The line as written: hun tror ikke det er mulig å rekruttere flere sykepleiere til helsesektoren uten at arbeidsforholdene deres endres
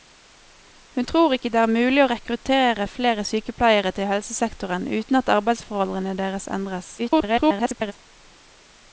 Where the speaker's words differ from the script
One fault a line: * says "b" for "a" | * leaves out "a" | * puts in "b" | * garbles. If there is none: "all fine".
* garbles